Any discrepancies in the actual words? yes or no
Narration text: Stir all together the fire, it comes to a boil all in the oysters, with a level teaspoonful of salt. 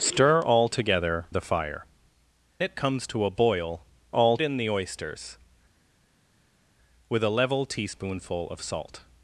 no